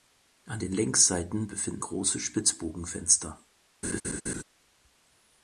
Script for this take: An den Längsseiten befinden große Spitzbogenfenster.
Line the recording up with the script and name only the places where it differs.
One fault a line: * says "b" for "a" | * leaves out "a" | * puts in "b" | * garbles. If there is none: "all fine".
all fine